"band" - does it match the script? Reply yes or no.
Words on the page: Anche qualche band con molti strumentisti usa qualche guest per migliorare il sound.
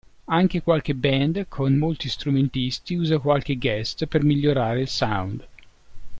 yes